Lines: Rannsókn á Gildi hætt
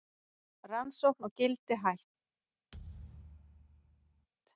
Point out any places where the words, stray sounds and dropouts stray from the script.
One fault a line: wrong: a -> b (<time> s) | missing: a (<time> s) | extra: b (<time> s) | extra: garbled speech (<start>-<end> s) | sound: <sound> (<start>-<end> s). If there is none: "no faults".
sound: thud (2.7-4.3 s)